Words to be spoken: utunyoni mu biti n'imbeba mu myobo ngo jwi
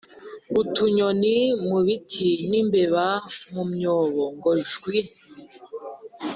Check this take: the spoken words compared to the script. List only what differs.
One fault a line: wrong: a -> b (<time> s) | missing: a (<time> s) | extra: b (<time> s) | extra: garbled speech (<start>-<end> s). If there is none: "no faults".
no faults